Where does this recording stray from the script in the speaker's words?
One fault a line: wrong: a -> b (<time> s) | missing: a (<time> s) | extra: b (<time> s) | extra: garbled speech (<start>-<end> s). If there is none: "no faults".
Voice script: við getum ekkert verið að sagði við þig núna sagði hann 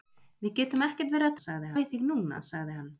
no faults